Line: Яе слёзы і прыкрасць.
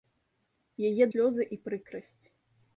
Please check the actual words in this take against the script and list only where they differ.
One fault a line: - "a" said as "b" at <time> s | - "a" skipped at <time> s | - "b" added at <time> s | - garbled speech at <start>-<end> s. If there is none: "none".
none